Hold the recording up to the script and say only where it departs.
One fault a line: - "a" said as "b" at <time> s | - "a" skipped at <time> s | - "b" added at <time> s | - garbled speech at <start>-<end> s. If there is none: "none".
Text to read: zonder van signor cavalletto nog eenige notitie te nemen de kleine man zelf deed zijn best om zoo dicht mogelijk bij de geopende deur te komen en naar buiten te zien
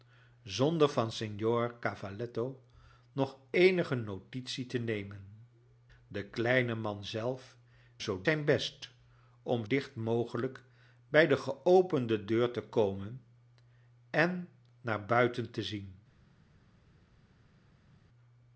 - "deed" said as "zoo" at 8.0 s
- "zoo" skipped at 9.7 s